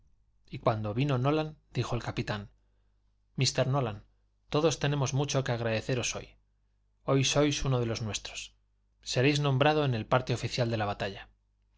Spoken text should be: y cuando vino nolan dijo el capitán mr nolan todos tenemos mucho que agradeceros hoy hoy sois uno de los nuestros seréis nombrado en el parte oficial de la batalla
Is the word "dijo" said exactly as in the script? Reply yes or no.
yes